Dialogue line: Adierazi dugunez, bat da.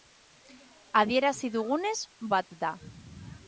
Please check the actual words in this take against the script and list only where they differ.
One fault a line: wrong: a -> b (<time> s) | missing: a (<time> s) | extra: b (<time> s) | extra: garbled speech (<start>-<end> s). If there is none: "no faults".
no faults